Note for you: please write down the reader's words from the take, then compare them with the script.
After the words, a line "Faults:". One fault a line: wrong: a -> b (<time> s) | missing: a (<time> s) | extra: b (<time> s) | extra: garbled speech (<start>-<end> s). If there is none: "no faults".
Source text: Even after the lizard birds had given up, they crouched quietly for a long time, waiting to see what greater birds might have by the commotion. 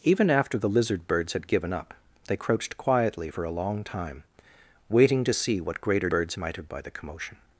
Even after the lizard birds had given up, they crouched quietly for a long time, waiting to see what greater birds might have by the commotion.
Faults:
no faults